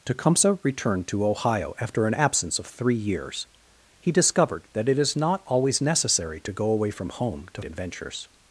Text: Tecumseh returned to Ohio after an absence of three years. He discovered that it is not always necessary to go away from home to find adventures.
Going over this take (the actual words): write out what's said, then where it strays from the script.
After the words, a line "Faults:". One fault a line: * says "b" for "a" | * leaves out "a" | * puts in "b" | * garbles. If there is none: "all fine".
Tecumseh returned to Ohio after an absence of three years. He discovered that it is not always necessary to go away from home to adventures.
Faults:
* leaves out "find"